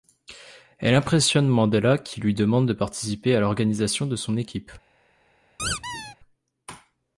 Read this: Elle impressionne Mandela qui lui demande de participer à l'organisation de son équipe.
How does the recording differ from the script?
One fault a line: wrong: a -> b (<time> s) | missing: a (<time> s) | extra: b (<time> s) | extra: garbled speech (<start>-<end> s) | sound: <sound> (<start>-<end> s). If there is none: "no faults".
sound: squeak (5.6-6.2 s)